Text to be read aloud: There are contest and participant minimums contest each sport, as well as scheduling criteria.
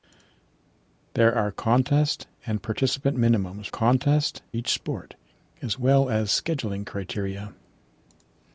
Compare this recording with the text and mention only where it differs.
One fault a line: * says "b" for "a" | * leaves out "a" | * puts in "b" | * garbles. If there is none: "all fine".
all fine